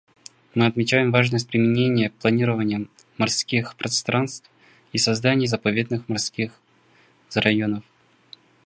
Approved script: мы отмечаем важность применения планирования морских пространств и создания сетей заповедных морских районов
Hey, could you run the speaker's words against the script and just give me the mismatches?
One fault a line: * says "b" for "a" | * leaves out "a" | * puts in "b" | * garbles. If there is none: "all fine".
* leaves out "сетей"